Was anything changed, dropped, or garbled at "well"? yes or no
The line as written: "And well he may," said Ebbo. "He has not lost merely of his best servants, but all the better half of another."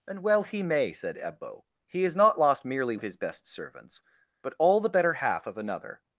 no